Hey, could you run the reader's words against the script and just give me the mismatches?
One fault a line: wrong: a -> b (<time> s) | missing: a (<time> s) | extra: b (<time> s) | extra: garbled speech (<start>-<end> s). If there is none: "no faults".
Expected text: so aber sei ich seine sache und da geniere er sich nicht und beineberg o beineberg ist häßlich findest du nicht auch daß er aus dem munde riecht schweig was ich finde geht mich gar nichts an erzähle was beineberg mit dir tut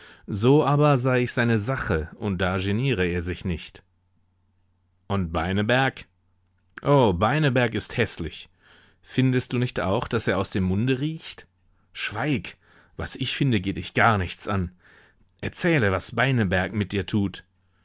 wrong: mich -> dich (13.7 s)